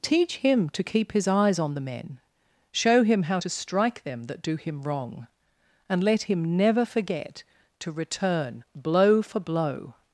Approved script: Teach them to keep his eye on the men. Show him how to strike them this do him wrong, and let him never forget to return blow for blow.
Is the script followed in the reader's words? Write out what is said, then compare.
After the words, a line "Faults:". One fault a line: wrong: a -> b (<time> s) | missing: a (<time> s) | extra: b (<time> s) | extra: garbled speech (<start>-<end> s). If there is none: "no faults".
Teach him to keep his eyes on the men. Show him how to strike them that do him wrong, and let him never forget to return blow for blow.
Faults:
wrong: them -> him (0.4 s)
wrong: eye -> eyes (1.3 s)
wrong: this -> that (4.2 s)